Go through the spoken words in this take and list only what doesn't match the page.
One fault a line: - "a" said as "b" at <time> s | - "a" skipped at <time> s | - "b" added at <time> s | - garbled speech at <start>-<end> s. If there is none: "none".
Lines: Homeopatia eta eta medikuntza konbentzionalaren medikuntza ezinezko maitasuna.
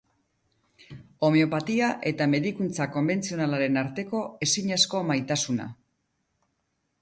- "eta" skipped at 2.3 s
- "medikuntza" said as "arteko" at 3.9 s